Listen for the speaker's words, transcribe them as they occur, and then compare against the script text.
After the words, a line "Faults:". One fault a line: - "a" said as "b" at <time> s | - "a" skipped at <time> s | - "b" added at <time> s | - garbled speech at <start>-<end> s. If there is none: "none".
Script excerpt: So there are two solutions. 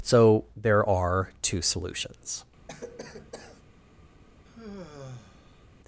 So there are two solutions.
Faults:
none